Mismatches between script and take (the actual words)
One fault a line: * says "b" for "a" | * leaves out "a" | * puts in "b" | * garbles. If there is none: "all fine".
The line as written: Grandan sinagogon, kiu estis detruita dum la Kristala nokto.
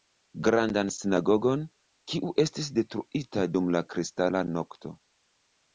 all fine